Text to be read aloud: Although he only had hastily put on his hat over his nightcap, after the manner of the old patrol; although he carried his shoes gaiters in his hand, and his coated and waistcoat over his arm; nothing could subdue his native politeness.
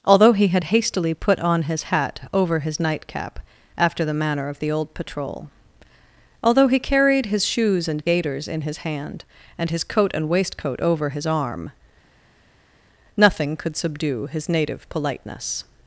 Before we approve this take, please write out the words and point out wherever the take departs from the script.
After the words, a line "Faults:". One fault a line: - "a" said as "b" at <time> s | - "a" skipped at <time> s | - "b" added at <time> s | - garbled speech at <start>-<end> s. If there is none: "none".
Although he had hastily put on his hat over his nightcap, after the manner of the old patrol; although he carried his shoes and gaiters in his hand, and his coat and waistcoat over his arm; nothing could subdue his native politeness.
Faults:
- "only" skipped at 0.5 s
- "and" added at 7.9 s
- "coated" said as "coat" at 9.8 s